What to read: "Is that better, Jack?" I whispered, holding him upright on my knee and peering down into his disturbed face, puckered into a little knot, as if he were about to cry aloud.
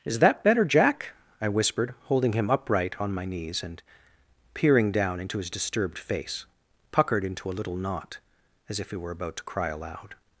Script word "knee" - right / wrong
wrong